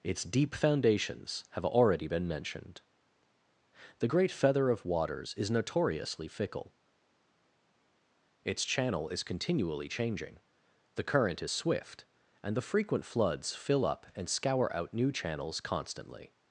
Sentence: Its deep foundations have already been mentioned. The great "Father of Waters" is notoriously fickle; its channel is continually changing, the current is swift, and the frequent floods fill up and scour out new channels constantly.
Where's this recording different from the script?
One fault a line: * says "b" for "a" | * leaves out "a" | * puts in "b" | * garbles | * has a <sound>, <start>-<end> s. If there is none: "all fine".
* says "Feather" for "Father"